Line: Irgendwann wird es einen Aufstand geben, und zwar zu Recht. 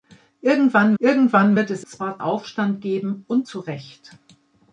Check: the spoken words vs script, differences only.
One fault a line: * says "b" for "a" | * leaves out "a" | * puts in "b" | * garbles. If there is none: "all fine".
* puts in "irgendwann"
* says "zwar" for "einen"
* leaves out "zwar"